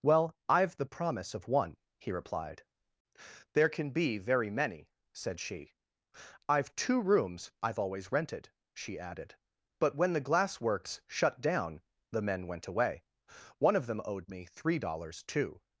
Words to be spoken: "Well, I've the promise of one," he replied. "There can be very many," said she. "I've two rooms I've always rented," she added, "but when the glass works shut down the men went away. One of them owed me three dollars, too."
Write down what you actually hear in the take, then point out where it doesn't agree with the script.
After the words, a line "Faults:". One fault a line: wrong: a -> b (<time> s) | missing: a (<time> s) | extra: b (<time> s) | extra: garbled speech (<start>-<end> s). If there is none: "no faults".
"Well, I've the promise of one," he replied. "There can be very many," said she. "I've two rooms I've always rented," she added, "but when the glass works shut down the men went away. One of them owed me three dollars, too."
Faults:
no faults